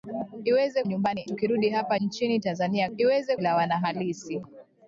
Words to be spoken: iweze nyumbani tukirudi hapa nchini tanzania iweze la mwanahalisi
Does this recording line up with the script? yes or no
yes